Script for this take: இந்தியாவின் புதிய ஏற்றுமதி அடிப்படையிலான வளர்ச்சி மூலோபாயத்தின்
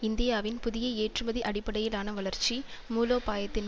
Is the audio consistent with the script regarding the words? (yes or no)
yes